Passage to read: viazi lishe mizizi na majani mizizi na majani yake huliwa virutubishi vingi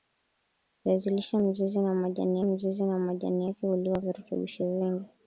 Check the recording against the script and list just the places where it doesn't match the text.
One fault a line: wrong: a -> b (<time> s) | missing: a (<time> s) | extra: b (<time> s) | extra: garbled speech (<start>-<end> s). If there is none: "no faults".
no faults